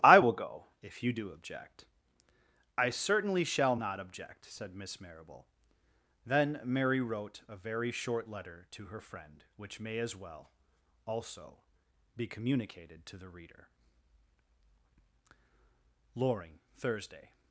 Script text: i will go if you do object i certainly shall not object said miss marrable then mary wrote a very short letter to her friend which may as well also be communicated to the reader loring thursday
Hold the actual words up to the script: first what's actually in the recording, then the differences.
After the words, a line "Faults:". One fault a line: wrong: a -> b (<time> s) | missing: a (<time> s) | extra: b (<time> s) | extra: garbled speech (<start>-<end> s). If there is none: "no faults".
i will go if you do object i certainly shall not object said miss marrable then mary wrote a very short letter to her friend which may as well also be communicated to the reader loring thursday
Faults:
no faults